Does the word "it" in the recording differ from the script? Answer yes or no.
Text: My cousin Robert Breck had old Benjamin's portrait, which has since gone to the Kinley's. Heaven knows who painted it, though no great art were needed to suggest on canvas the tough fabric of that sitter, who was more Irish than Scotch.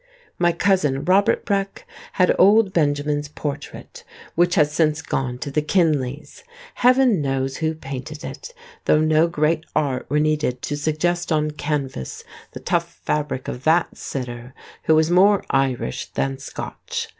no